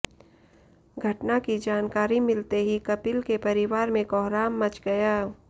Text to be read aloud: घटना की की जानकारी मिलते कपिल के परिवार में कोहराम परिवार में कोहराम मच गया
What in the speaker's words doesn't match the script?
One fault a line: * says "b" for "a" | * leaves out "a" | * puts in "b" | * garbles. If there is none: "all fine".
* leaves out "की"
* puts in "ही"
* leaves out "परिवार में कोहराम"